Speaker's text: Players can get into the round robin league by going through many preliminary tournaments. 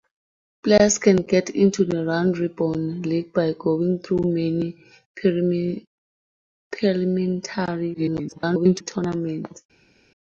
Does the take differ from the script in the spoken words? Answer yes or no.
yes